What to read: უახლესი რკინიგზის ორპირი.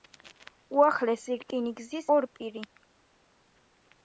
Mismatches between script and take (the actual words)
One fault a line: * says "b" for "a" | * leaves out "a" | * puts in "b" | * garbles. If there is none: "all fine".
all fine